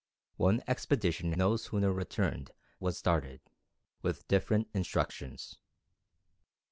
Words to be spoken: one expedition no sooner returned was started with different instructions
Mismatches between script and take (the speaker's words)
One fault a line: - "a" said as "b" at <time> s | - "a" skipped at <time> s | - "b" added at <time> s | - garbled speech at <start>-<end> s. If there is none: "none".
none